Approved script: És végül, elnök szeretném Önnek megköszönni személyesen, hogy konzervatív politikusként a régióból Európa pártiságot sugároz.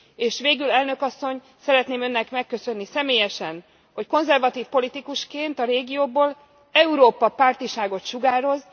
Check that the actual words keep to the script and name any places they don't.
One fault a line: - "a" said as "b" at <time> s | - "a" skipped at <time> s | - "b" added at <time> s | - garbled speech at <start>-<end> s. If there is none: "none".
- "asszony" added at 1.0 s